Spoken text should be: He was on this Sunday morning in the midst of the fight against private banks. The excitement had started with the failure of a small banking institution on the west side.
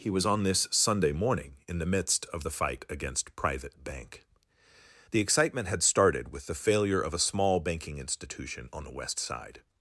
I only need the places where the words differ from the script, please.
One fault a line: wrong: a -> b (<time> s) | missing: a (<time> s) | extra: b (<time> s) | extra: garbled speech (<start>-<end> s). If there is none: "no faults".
wrong: banks -> bank (3.8 s)